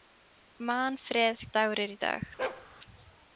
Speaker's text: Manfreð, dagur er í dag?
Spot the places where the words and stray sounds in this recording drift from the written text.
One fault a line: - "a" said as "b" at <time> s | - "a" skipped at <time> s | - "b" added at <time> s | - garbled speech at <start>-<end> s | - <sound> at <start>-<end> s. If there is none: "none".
- bark at 2.4-2.7 s